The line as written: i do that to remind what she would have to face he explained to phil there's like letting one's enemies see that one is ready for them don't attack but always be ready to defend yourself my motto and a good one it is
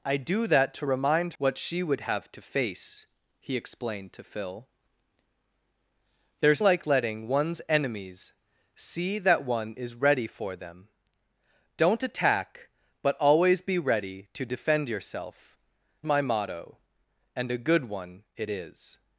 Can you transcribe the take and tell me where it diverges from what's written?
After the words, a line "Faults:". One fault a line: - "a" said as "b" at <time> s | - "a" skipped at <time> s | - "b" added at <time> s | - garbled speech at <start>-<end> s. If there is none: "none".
i do that to remind what she would have to face he explained to phil there's like letting one's enemies see that one is ready for them don't attack but always be ready to defend yourself my motto and a good one it is
Faults:
none